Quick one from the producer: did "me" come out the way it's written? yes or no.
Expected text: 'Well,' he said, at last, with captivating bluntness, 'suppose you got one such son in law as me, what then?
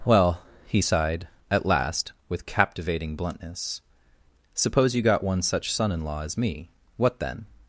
yes